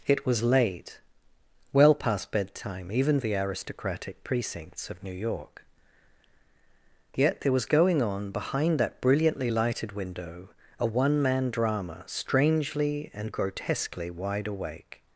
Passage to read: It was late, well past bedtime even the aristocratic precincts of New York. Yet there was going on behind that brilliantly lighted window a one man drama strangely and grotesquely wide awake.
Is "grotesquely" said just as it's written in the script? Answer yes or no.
yes